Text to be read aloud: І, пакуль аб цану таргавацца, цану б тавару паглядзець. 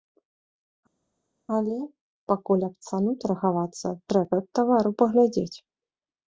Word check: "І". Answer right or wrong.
wrong